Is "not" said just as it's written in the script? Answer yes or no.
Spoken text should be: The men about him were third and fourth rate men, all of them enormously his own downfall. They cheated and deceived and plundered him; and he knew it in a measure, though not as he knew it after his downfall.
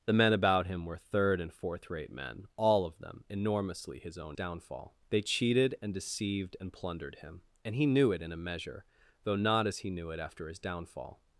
yes